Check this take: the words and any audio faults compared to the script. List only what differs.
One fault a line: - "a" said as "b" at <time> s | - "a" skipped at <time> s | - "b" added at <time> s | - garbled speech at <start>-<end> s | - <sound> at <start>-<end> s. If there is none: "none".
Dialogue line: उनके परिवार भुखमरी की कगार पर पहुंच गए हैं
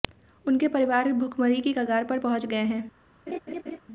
- laugh at 3.3-3.8 s